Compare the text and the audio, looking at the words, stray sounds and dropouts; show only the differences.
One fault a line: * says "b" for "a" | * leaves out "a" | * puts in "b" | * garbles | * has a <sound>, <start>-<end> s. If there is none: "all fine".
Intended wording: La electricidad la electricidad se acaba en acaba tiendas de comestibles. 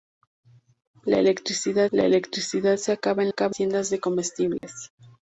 * has a dropout, 4.6-4.6 s